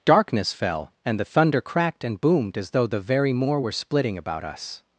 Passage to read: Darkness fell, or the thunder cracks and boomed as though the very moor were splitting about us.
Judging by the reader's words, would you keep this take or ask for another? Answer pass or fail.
fail